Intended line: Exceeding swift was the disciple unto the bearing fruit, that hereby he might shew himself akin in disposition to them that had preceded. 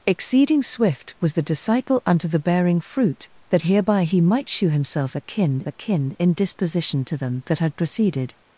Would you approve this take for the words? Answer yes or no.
no